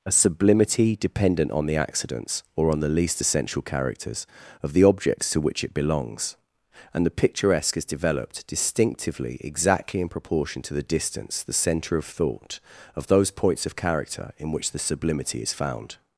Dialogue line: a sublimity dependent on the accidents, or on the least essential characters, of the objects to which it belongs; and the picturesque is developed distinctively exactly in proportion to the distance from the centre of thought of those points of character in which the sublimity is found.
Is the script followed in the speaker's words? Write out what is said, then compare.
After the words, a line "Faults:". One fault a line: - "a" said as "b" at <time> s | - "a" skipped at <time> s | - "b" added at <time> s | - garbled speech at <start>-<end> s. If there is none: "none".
a sublimity dependent on the accidents, or on the least essential characters, of the objects to which it belongs; and the picturesque is developed distinctively exactly in proportion to the distance the centre of thought of those points of character in which the sublimity is found.
Faults:
- "from" skipped at 11.4 s